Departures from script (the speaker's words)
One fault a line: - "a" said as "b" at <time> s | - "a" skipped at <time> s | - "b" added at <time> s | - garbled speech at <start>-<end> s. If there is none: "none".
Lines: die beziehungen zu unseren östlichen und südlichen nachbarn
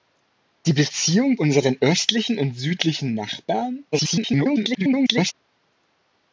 - "zu" skipped at 1.4 s
- garbled speech at 3.9-5.3 s